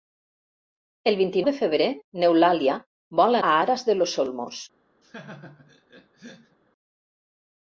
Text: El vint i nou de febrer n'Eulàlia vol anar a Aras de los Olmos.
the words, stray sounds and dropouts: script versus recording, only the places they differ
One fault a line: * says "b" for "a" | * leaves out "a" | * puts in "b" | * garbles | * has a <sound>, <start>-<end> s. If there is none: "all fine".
* leaves out "nou"
* leaves out "anar"
* has a laugh, 5.0-6.6 s